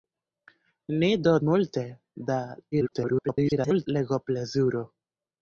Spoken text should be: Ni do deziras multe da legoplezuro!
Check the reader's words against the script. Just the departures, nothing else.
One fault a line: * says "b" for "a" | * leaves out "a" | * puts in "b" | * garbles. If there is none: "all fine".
* leaves out "deziras"
* garbles